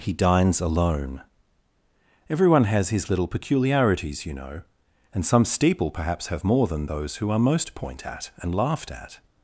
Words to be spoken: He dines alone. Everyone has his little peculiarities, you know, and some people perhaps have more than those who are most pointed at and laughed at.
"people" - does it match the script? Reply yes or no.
no